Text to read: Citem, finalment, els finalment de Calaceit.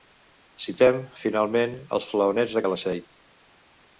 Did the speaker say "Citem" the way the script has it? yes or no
yes